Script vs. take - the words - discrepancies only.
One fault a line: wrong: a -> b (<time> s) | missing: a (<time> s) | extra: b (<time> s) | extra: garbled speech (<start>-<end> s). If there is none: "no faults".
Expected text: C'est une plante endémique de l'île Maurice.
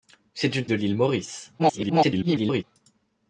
missing: plante endémique (0.7 s)
extra: garbled speech (1.6-2.6 s)